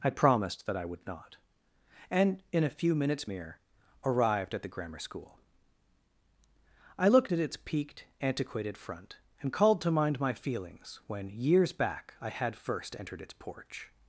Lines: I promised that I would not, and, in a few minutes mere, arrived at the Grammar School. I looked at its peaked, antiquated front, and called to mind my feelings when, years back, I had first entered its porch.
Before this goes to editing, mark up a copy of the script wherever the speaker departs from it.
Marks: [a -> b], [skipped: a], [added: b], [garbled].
I promised that I would not, and, in a few minutes mere, arrived at the Grammar School. I looked at its peaked, antiquated front, and called to mind my feelings when, years back, I had first entered its porch.